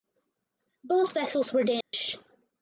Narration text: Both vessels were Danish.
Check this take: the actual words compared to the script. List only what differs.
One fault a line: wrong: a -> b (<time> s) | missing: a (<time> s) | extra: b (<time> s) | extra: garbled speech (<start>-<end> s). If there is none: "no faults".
no faults